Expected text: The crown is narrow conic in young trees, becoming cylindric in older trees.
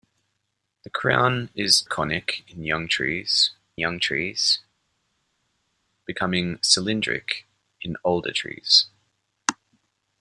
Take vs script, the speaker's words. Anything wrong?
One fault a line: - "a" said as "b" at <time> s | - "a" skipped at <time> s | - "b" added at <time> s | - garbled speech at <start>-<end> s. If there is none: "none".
- "narrow" skipped at 1.8 s
- "young trees" added at 3.8 s